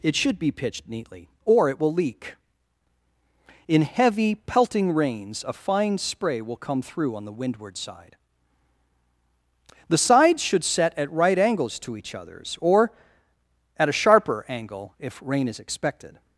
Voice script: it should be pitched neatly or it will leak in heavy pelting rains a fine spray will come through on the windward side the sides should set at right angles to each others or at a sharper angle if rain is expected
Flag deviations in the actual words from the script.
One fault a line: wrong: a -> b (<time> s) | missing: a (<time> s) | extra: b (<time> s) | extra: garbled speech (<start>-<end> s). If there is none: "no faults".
no faults